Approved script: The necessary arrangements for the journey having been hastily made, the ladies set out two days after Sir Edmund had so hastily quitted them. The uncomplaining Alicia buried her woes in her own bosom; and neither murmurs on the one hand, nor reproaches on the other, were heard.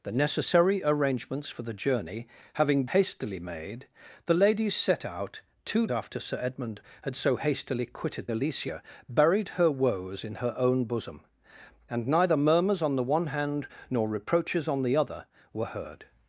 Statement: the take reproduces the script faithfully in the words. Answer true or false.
false